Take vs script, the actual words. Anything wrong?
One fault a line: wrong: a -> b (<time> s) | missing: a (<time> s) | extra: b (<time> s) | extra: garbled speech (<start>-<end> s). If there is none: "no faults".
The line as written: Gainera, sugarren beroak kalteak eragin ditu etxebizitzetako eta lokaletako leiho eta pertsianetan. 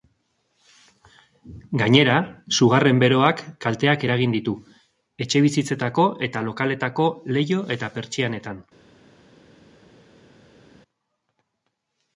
no faults